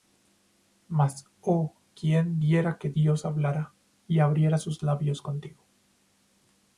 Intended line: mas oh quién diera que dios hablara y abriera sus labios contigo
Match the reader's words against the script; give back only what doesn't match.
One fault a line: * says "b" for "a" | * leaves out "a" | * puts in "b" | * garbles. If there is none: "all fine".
all fine